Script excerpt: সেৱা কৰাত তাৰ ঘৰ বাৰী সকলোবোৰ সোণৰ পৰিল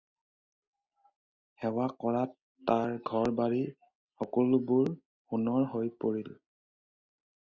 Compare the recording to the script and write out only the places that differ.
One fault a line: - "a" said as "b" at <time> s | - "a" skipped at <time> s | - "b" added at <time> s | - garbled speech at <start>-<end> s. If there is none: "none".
- "হৈ" added at 5.7 s